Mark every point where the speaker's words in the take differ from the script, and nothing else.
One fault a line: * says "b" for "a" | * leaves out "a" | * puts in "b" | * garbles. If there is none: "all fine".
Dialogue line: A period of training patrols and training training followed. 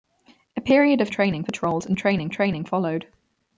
all fine